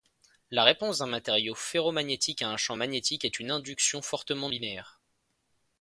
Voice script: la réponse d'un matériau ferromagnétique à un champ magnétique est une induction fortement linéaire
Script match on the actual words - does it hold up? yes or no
yes